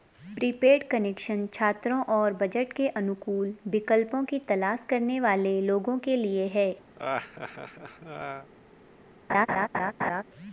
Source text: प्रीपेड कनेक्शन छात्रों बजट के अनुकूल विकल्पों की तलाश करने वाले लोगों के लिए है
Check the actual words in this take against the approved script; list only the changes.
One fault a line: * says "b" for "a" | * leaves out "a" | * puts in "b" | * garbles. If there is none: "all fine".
* puts in "और"